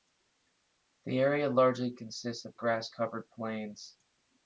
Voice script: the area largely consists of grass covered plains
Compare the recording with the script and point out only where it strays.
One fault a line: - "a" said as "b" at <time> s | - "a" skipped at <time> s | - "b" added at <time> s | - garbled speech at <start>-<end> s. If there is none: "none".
none